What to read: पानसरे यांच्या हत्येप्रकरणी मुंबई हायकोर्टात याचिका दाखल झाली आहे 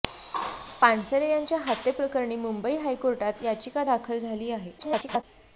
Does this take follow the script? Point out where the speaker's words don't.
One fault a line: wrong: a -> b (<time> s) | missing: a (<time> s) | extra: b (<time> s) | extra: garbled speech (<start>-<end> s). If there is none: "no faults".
extra: garbled speech (4.8-5.2 s)